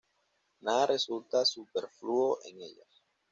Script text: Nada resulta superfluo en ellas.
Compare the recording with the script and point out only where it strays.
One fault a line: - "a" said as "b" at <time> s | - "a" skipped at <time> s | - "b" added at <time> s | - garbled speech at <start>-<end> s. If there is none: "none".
none